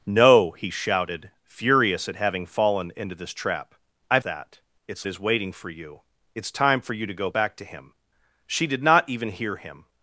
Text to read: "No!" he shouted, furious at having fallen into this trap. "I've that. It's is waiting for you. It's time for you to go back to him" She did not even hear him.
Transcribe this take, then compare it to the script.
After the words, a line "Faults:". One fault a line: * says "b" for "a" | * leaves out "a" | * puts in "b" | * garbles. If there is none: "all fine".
"No!" he shouted, furious at having fallen into this trap. "I've that. It's is waiting for you. It's time for you to go back to him" She did not even hear him.
Faults:
all fine